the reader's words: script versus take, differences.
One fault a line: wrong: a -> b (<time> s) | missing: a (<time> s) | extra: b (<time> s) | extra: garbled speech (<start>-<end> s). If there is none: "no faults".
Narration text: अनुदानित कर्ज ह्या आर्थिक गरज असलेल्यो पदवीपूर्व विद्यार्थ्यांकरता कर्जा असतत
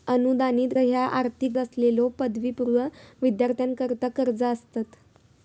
missing: कर्ज (0.7 s)
missing: गरज (1.5 s)